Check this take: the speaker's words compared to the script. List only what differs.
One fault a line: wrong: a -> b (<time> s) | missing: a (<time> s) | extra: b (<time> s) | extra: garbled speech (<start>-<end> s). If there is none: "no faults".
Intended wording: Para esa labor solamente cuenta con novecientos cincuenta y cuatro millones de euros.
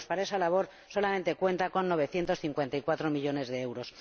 no faults